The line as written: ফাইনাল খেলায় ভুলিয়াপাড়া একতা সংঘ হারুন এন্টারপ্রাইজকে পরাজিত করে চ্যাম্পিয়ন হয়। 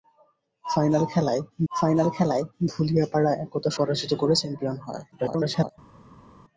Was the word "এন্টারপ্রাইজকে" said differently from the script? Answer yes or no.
yes